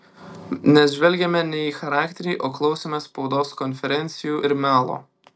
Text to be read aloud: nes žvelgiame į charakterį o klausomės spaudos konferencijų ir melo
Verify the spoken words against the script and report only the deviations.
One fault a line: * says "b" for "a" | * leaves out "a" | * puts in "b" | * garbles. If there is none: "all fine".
* puts in "ne"